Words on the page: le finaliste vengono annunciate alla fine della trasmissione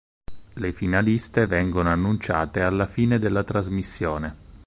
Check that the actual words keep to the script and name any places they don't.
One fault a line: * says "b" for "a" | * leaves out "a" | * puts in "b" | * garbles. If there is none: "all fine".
all fine